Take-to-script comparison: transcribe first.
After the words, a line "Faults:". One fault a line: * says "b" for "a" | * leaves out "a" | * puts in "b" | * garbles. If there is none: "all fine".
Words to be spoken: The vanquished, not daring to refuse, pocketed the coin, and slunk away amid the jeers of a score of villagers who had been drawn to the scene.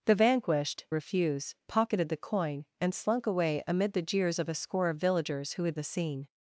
The vanquished, refuse, pocketed the coin, and slunk away amid the jeers of a score of villagers who had the scene.
Faults:
* leaves out "not daring to"
* leaves out "been drawn to"